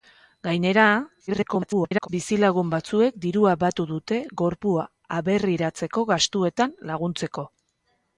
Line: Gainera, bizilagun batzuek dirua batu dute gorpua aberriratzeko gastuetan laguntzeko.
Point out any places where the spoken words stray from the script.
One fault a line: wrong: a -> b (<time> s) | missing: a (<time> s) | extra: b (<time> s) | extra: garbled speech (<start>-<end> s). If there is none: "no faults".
extra: garbled speech (1.3-2.1 s)